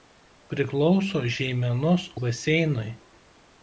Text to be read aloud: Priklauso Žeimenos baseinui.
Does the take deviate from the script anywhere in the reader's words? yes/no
no